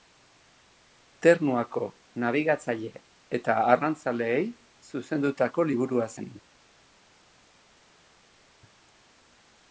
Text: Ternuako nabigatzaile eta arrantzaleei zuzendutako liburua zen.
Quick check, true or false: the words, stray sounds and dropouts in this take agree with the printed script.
true